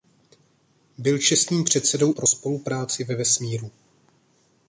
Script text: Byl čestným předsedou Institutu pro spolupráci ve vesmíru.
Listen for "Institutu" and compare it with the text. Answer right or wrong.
wrong